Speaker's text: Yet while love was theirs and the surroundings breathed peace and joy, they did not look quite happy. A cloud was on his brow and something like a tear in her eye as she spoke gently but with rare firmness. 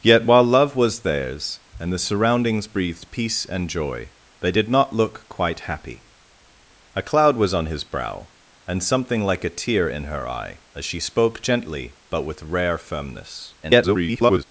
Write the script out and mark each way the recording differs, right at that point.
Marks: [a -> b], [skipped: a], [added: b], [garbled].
Yet while love was theirs and the surroundings breathed peace and joy, they did not look quite happy. A cloud was on his brow and something like a tear in her eye as she spoke gently but with rare firmness. [garbled]